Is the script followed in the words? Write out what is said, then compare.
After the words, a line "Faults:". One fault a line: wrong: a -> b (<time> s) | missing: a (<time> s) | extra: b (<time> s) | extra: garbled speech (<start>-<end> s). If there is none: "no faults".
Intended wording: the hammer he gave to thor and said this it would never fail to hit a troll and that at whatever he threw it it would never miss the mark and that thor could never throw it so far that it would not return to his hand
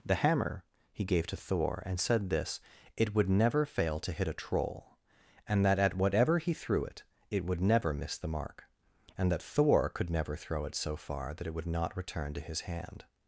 the hammer he gave to thor and said this it would never fail to hit a troll and that at whatever he threw it it would never miss the mark and that thor could never throw it so far that it would not return to his hand
Faults:
no faults